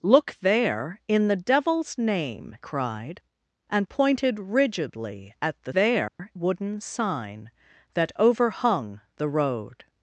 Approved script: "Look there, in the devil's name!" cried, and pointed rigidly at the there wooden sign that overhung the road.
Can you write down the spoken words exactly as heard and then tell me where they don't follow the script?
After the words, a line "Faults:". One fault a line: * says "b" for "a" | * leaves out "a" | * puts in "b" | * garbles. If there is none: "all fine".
"Look there, in the devil's name!" cried, and pointed rigidly at the there wooden sign that overhung the road.
Faults:
all fine